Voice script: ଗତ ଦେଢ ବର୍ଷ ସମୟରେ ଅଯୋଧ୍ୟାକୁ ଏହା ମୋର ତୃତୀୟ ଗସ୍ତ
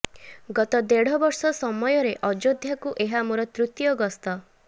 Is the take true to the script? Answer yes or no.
yes